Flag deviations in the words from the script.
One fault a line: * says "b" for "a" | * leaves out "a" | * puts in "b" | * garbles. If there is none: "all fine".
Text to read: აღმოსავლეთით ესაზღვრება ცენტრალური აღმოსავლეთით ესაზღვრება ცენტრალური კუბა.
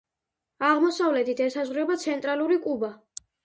* leaves out "აღმოსავლეთით ესაზღვრება ცენტრალური"